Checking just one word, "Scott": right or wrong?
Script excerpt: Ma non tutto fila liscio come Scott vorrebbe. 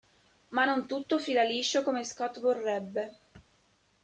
right